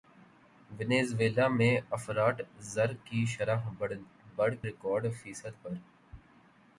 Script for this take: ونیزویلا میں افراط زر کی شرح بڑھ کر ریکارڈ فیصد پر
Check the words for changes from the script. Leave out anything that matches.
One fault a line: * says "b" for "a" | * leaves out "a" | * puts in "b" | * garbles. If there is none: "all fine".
* leaves out "کر"